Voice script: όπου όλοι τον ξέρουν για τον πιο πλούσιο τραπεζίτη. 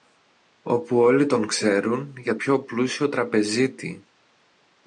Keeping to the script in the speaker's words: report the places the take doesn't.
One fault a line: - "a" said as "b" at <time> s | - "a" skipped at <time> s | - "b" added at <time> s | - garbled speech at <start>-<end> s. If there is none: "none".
- "τον" skipped at 2.3 s